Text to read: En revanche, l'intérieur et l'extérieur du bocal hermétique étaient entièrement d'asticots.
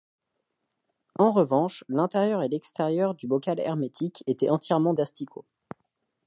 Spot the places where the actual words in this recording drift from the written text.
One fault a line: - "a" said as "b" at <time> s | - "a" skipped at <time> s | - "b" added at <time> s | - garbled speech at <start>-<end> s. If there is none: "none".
none